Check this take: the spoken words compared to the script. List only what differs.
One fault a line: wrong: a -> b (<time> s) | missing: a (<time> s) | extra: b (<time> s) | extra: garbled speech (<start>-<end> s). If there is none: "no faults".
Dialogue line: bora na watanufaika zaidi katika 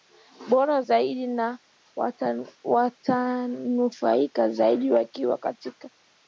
extra: zaidi (0.8 s)
extra: wakiwa (4.9 s)